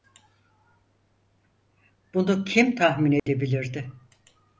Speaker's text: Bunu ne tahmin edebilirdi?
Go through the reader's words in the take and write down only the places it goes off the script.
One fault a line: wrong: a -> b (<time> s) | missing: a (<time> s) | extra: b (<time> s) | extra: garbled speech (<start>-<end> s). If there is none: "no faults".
wrong: ne -> kim (2.4 s)